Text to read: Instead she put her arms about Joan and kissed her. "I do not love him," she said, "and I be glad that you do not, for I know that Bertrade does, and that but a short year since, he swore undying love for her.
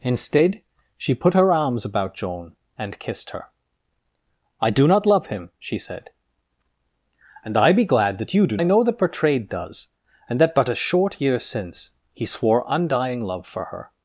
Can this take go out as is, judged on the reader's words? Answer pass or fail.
fail